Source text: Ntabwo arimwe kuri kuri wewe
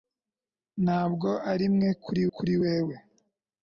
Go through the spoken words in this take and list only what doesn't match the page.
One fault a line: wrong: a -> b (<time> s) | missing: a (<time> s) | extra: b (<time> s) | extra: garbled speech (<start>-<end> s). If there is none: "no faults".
no faults